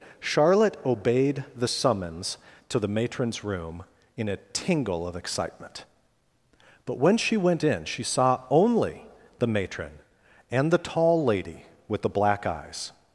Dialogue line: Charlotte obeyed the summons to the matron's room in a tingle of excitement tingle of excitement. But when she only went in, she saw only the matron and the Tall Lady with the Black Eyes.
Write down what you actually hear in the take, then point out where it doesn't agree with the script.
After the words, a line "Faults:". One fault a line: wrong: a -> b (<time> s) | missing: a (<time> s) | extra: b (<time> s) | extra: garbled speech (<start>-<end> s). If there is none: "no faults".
Charlotte obeyed the summons to the matron's room in a tingle of excitement. But when she went in, she saw only the matron and the Tall Lady with the Black Eyes.
Faults:
missing: tingle of excitement (5.8 s)
missing: only (7.4 s)